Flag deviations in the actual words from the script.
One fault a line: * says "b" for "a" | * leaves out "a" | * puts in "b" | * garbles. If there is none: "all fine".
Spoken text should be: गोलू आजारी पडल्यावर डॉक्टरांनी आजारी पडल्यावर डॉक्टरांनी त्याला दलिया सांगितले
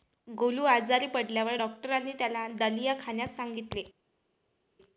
* leaves out "आजारी पडल्यावर डॉक्टरांनी"
* puts in "खाण्यास"